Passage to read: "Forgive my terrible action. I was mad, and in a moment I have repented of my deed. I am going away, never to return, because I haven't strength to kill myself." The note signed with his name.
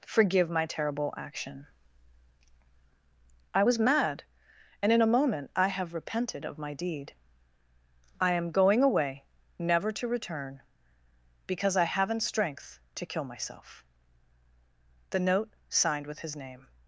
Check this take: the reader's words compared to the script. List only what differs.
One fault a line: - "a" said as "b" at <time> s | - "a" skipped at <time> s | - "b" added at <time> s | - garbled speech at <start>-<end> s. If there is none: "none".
none